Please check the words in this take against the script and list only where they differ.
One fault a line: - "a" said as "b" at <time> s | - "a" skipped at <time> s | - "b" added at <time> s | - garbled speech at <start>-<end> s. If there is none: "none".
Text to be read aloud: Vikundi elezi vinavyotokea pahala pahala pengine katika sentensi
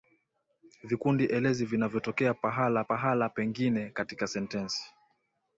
none